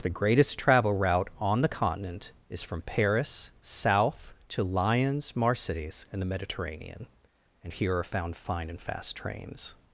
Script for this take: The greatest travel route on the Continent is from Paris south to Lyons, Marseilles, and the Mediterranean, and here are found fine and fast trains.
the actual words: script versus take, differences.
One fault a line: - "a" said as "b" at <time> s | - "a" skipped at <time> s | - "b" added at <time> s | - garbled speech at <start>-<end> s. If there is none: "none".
none